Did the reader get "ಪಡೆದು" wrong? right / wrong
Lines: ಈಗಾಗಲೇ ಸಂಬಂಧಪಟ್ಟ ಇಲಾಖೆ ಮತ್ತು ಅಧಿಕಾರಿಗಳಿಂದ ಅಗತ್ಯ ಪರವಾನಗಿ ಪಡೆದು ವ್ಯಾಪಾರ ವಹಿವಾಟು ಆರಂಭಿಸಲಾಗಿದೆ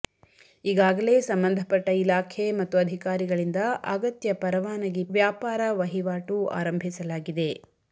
wrong